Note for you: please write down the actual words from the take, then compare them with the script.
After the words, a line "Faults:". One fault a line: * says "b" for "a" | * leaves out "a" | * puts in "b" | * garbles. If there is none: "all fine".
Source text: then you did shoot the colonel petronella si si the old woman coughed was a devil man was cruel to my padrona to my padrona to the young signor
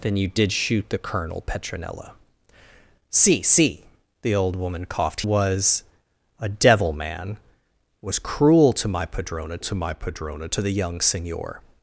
then you did shoot the colonel petronella si si the old woman coughed was a devil man was cruel to my padrona to my padrona to the young signor
Faults:
all fine